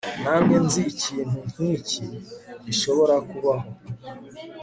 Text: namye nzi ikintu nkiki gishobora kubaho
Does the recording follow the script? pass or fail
pass